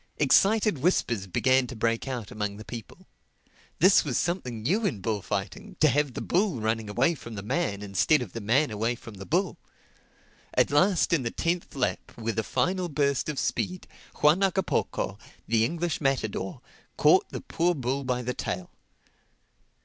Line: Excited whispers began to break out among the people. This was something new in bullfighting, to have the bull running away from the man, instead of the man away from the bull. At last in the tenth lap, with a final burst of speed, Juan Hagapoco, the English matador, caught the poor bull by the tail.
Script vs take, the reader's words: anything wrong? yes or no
no